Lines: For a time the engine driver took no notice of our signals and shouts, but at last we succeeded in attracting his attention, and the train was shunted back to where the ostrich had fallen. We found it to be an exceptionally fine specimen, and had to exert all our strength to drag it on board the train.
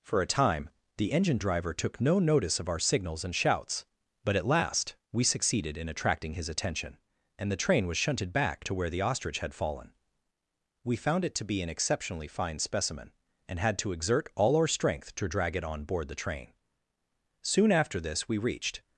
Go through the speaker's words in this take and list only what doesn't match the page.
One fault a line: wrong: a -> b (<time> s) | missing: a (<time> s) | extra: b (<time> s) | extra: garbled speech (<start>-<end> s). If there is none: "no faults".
extra: Soon after this we reached (17.4 s)